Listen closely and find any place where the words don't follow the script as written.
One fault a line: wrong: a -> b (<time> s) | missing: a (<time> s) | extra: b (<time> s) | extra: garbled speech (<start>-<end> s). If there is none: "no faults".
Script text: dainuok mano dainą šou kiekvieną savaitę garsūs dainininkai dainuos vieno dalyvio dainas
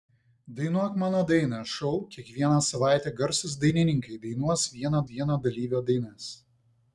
extra: vieno (5.1 s)